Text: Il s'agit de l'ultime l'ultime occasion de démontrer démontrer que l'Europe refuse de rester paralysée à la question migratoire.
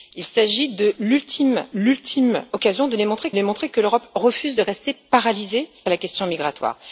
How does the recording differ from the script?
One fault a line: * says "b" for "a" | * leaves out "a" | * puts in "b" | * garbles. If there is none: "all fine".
all fine